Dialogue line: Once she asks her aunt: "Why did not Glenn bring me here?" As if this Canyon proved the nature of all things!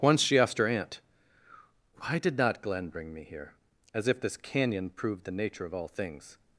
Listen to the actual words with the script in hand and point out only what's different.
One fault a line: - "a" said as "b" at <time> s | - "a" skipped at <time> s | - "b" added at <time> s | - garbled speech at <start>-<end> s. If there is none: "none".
- "asks" said as "asked" at 0.4 s